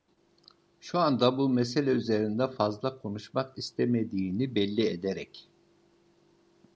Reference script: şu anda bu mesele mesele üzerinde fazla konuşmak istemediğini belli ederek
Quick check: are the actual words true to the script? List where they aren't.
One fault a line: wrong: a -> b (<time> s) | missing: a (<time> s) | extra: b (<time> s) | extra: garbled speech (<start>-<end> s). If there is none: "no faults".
missing: mesele (1.9 s)